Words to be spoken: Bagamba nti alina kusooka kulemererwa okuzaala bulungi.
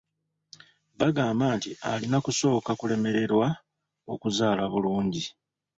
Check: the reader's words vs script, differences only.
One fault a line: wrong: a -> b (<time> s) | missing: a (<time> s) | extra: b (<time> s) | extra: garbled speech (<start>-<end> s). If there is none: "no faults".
no faults